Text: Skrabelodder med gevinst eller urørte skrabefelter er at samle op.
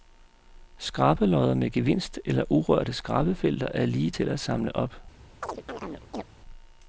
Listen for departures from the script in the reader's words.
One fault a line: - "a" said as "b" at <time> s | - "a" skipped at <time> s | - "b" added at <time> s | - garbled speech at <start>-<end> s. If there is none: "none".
- "lige til" added at 3.9 s